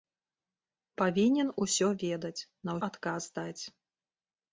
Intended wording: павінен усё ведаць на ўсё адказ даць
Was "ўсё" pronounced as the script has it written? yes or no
no